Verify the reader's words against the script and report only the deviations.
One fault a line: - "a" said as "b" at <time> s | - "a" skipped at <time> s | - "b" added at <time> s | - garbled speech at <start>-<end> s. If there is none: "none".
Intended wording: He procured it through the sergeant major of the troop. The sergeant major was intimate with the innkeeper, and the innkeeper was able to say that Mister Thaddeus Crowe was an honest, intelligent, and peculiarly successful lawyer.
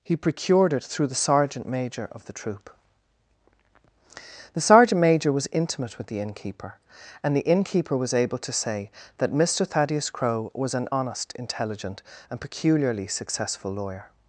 none